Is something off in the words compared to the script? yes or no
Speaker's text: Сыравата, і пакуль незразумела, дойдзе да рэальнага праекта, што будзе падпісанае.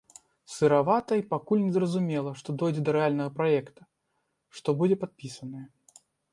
yes